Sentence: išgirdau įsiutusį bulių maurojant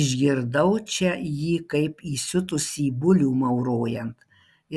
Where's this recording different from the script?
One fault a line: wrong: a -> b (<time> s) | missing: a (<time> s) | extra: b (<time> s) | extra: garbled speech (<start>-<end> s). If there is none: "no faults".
extra: čia jį kaip (0.9 s)